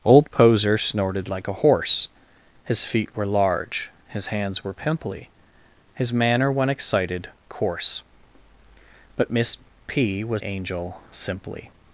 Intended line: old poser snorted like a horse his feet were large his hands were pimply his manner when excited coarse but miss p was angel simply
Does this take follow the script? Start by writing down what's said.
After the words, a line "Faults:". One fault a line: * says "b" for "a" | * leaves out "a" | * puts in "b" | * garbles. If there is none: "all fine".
old poser snorted like a horse his feet were large his hands were pimply his manner when excited coarse but miss p was angel simply
Faults:
all fine